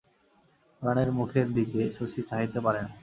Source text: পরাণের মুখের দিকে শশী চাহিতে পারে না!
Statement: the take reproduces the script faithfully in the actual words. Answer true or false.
true